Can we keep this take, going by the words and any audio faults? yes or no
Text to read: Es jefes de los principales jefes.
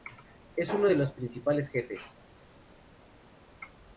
no